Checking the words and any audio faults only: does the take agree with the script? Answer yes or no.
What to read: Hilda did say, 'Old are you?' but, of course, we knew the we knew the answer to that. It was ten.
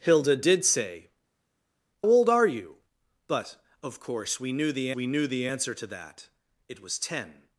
yes